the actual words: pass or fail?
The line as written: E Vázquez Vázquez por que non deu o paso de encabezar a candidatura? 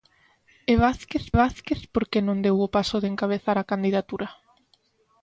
pass